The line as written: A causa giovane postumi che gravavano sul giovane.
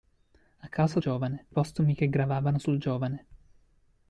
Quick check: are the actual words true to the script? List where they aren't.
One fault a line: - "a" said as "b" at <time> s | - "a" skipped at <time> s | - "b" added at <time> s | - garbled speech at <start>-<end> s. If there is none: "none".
none